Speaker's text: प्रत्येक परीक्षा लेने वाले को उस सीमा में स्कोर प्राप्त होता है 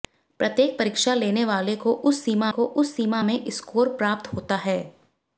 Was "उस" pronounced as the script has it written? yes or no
yes